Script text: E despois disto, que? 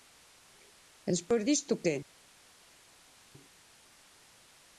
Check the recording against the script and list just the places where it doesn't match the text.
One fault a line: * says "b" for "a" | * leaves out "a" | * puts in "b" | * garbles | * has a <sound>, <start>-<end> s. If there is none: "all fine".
all fine